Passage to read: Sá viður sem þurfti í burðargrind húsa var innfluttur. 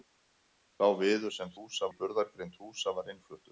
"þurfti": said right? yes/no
no